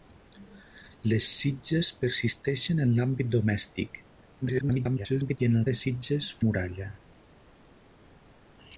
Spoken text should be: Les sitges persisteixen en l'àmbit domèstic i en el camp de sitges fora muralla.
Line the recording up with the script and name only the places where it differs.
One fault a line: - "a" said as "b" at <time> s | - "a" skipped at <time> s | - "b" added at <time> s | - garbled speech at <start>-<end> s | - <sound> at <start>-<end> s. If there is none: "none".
- garbled speech at 4.4-5.4 s
- "camp" skipped at 5.6 s
- "fora" skipped at 6.3 s